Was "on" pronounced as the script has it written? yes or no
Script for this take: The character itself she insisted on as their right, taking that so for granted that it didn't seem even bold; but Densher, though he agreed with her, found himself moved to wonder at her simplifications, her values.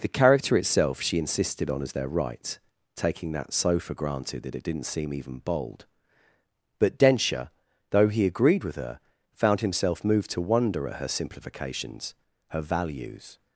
yes